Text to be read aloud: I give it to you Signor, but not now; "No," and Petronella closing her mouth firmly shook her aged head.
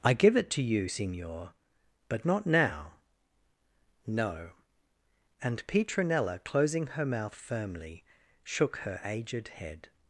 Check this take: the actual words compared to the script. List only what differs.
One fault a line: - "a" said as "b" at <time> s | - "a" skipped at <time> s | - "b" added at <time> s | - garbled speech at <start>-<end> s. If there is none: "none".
none